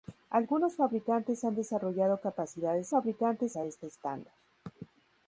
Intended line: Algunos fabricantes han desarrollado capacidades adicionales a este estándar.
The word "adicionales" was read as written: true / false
false